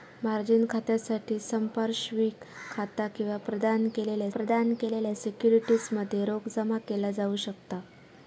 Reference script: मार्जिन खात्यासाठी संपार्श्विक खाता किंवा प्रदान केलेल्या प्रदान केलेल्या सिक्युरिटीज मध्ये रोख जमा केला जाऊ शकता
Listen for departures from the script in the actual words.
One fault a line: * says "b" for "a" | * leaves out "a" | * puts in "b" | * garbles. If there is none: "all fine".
all fine